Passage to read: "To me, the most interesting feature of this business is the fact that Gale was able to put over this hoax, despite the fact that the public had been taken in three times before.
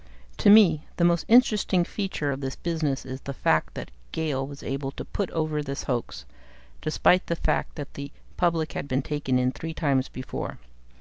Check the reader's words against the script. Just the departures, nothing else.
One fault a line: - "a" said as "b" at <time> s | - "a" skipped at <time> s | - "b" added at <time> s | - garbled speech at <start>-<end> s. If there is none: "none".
none